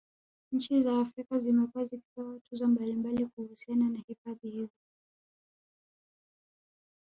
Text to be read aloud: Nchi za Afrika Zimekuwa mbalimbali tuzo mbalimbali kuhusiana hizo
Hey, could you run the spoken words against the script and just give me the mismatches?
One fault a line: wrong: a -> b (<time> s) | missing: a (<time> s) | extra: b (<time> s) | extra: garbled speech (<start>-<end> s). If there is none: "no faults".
wrong: mbalimbali -> zikipewa (1.9 s)
extra: na hifadhi (3.9 s)